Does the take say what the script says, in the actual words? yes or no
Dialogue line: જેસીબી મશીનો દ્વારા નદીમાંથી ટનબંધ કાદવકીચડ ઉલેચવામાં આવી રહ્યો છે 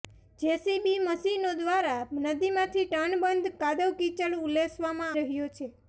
no